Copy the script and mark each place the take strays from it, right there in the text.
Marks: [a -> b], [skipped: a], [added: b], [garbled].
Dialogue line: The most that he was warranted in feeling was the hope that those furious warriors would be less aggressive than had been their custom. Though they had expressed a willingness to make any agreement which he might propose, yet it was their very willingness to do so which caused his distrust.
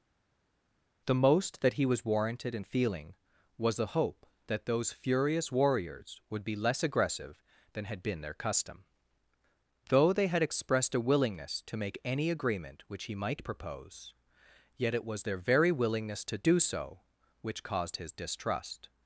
The most that he was warranted in feeling was the hope that those furious warriors would be less aggressive than had been their custom. Though they had expressed a willingness to make any agreement which he might propose, yet it was their very willingness to do so which caused his distrust.